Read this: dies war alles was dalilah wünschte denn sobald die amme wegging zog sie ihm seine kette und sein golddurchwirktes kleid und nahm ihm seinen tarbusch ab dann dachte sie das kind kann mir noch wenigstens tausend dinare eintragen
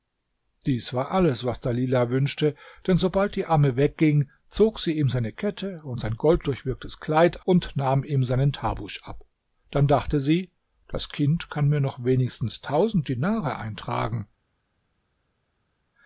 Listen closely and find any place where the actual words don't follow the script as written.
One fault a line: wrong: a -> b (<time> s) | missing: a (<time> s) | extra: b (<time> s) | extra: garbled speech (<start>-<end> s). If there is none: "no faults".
no faults